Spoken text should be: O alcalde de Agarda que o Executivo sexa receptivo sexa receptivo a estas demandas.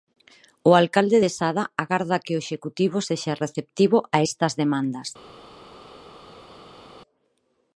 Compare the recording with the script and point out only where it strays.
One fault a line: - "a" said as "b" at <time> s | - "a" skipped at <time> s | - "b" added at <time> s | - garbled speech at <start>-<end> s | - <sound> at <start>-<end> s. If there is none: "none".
- "Sada" added at 1.4 s
- "sexa receptivo" skipped at 4.0 s